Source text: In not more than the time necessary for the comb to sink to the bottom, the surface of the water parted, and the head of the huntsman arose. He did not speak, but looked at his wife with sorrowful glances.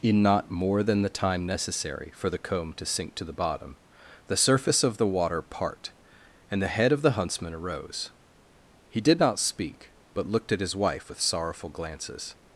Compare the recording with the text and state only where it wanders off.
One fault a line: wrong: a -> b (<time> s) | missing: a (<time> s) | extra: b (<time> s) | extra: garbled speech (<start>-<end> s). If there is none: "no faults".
wrong: parted -> part (5.4 s)